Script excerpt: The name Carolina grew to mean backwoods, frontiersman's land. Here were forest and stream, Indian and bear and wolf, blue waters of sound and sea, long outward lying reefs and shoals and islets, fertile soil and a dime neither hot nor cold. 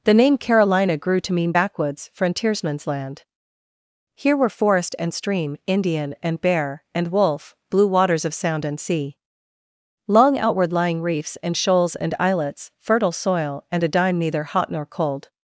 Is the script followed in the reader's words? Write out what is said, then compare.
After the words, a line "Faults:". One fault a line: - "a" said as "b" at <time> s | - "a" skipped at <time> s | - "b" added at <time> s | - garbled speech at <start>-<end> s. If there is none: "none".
The name Carolina grew to mean backwoods, frontiersman's land. Here were forest and stream, Indian and bear and wolf, blue waters of sound and sea, long outward lying reefs and shoals and islets, fertile soil and a dime neither hot nor cold.
Faults:
none